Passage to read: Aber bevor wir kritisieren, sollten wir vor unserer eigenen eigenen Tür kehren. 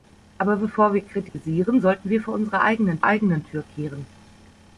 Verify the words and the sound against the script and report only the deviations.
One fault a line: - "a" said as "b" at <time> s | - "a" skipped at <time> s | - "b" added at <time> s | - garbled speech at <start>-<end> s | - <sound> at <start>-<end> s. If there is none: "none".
- dropout at 1.3-1.3 s